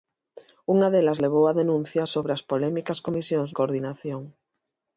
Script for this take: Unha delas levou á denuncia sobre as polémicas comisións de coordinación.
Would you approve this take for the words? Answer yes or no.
no